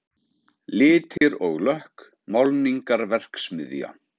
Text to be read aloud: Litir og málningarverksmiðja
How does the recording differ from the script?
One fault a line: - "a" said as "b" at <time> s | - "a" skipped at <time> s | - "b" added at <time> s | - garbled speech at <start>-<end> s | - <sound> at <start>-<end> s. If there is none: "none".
- dropout at 1.2-1.2 s
- "lökk" added at 1.7 s